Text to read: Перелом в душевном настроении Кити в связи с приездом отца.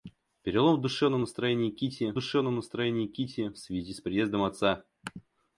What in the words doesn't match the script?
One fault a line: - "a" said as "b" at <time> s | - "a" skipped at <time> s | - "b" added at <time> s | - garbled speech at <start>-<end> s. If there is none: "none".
- "душевном настроении Кити" added at 2.1 s